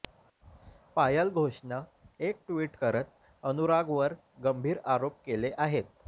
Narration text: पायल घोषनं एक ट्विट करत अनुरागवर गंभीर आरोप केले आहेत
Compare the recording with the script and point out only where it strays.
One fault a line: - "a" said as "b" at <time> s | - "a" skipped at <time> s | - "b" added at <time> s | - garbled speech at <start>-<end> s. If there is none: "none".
none